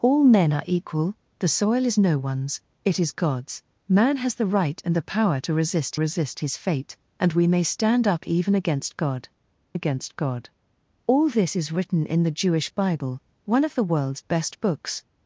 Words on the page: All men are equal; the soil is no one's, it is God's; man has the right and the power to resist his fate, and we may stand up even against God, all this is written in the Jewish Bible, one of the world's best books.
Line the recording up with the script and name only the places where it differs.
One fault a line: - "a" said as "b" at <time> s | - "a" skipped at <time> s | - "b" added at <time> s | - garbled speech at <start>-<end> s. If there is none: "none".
- "resist" added at 6.0 s
- "against God" added at 9.7 s